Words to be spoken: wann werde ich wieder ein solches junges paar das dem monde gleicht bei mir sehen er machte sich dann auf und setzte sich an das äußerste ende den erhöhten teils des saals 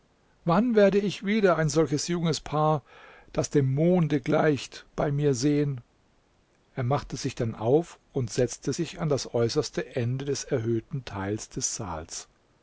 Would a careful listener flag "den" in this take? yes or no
yes